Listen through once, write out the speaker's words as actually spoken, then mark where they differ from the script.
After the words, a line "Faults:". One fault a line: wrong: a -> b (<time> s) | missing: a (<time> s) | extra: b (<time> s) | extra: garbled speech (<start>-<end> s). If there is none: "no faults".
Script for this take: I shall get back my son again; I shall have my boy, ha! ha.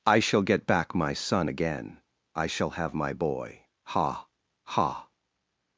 I shall get back my son again; I shall have my boy, ha! ha.
Faults:
no faults